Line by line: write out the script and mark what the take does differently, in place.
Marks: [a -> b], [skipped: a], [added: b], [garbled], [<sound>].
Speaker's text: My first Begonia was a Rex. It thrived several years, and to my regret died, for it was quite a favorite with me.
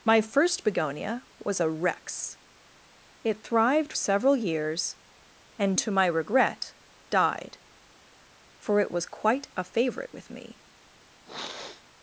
My first Begonia was a Rex. It thrived several years, and to my regret died, for it was quite a favorite with me. [sniff]